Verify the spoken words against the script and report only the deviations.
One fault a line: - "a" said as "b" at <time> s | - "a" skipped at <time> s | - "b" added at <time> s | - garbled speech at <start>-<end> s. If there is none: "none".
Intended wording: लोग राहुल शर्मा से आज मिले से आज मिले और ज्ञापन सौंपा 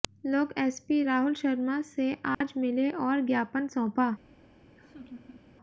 - "एसपी" added at 0.6 s
- "से आज मिले" skipped at 2.9 s